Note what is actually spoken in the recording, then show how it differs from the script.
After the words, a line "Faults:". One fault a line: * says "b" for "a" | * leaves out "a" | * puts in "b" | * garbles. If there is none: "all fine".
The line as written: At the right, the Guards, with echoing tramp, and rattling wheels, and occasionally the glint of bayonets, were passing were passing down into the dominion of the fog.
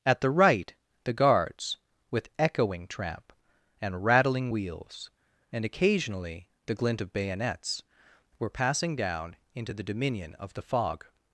At the right, the Guards, with echoing tramp, and rattling wheels, and occasionally the glint of bayonets, were passing down into the dominion of the fog.
Faults:
* leaves out "were passing"